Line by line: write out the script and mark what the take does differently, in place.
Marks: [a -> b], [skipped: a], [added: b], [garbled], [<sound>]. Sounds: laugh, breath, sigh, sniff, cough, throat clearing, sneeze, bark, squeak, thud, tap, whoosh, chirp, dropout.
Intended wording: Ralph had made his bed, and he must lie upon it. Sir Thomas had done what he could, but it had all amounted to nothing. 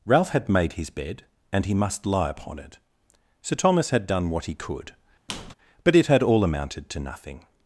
Ralph had made his bed, and he must lie upon it. Sir Thomas had done what he could, [squeak] but it had all amounted to nothing.